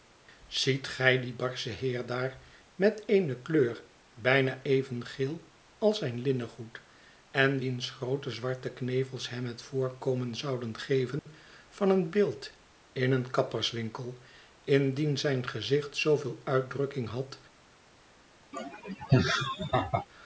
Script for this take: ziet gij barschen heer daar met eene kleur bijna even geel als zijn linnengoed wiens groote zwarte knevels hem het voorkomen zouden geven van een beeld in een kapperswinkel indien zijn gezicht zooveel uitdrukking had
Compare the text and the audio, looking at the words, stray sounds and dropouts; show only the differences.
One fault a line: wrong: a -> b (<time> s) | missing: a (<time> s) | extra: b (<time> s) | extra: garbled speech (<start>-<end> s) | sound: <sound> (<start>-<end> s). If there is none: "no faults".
extra: dien (1.2 s)
extra: en (7.3 s)
sound: dropout (11.2-11.3 s)
sound: laugh (18.5-20.1 s)